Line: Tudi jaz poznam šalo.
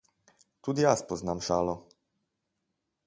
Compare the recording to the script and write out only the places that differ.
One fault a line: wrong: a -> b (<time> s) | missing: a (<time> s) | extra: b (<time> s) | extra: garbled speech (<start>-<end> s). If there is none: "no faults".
no faults